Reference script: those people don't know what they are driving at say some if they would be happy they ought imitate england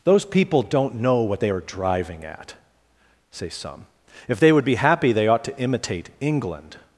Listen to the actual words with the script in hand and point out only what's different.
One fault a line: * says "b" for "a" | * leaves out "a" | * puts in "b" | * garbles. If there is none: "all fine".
* puts in "to"